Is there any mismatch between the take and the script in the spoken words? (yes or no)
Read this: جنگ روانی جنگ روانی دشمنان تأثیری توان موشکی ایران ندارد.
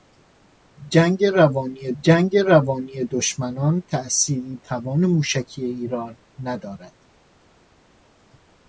no